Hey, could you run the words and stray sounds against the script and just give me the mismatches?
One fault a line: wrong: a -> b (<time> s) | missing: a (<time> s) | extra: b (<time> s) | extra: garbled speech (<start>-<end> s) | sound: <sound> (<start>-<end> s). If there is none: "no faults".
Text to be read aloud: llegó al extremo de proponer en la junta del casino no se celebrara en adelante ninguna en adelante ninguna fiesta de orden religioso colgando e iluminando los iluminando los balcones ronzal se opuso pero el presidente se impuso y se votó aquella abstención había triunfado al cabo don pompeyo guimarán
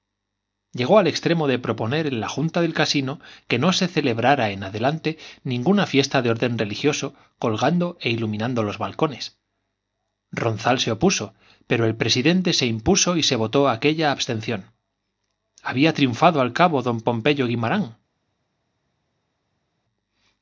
extra: que (3.5 s)
missing: en adelante ninguna (5.8 s)
missing: iluminando los (8.8 s)